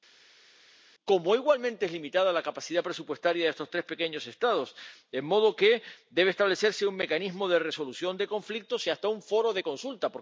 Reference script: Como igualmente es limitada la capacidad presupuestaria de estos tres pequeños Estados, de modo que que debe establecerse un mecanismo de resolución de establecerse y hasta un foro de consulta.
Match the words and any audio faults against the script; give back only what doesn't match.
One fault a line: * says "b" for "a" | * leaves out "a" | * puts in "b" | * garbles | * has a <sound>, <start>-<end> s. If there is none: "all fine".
* leaves out "que"
* says "conflictos" for "establecerse"